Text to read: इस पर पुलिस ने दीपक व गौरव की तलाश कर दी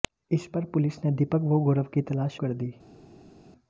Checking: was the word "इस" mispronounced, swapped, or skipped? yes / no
no